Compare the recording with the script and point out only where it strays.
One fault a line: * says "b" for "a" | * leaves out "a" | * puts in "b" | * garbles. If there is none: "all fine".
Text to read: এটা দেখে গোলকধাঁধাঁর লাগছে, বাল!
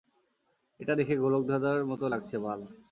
* puts in "মতো"